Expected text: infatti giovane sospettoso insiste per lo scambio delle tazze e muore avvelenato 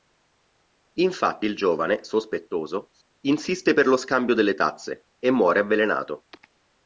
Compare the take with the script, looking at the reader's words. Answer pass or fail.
fail